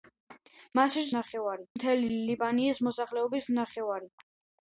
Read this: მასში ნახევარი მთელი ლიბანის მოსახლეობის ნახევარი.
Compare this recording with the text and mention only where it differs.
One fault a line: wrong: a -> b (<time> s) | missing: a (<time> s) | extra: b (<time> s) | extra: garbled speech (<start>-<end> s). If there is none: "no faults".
no faults